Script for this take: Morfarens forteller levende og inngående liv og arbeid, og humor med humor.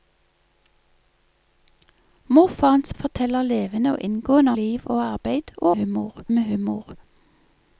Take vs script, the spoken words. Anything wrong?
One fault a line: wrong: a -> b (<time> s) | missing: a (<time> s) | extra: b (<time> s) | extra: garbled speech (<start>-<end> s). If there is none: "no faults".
no faults